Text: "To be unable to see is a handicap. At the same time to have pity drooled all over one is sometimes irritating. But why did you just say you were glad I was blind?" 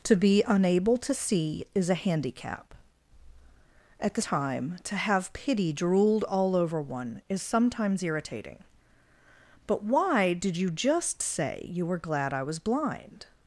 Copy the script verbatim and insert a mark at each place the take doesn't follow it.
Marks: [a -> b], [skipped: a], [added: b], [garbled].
"To be unable to see is a handicap. At the [skipped: same] time to have pity drooled all over one is sometimes irritating. But why did you just say you were glad I was blind?"